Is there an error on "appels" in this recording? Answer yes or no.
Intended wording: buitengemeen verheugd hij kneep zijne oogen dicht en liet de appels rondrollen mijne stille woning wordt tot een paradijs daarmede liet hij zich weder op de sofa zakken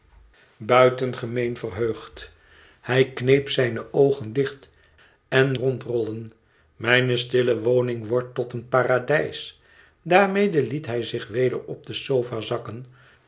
yes